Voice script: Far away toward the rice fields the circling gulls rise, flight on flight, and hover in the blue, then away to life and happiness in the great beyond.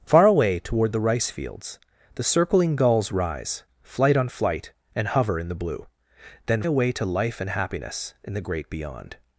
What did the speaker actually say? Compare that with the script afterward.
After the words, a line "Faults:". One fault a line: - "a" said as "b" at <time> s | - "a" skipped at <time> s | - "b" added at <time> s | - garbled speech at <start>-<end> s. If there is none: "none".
Far away toward the rice fields the circling gulls rise, flight on flight, and hover in the blue, then away to life and happiness in the great beyond.
Faults:
none